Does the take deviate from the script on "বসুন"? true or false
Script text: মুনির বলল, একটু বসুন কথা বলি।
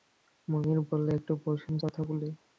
false